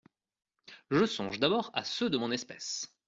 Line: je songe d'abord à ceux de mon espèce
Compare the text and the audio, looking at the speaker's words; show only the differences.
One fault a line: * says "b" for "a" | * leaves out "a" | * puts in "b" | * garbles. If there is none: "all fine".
all fine